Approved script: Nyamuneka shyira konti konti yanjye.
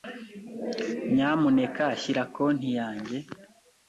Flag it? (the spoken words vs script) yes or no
yes